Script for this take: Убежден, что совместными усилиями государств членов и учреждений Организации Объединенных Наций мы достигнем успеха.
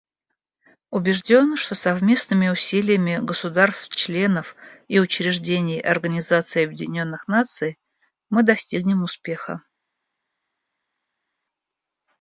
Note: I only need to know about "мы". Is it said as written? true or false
true